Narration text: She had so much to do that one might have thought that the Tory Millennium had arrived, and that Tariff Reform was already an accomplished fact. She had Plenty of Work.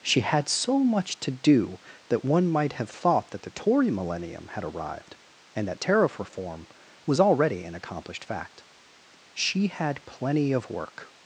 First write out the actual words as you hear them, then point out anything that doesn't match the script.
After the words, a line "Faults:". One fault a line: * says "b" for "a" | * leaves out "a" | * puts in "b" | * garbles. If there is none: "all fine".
She had so much to do that one might have thought that the Tory Millennium had arrived, and that Tariff Reform was already an accomplished fact. She had Plenty of Work.
Faults:
all fine